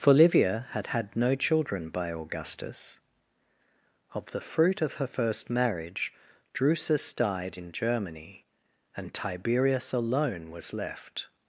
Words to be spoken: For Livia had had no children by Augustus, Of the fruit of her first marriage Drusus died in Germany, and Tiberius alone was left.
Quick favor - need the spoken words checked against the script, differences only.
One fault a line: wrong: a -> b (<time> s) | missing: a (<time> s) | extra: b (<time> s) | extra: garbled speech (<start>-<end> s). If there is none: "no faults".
no faults